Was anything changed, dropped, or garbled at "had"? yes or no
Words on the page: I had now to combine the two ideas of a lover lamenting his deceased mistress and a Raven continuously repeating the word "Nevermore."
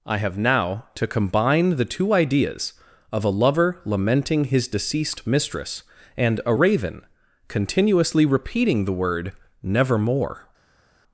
yes